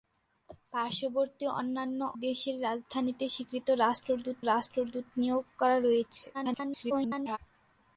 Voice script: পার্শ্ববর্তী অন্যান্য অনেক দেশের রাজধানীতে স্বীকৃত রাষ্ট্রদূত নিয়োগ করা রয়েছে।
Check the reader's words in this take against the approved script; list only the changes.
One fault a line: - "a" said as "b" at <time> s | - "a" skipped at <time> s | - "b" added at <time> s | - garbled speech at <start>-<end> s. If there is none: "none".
- "অনেক" skipped at 2.0 s
- "রাষ্ট্রদূত" added at 4.5 s
- garbled speech at 6.3-7.4 s